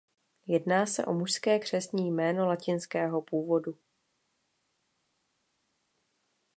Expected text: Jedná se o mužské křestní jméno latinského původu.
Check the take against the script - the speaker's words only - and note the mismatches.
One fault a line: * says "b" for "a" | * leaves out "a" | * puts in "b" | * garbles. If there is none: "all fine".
all fine